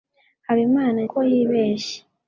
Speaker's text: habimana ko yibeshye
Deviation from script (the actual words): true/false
false